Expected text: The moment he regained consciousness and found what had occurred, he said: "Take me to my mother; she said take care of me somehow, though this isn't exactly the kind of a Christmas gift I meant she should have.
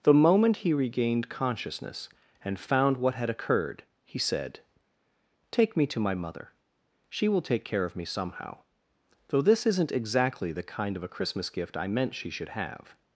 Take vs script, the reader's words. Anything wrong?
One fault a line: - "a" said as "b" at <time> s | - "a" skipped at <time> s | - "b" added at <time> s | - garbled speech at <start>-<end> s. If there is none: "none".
- "said" said as "will" at 7.3 s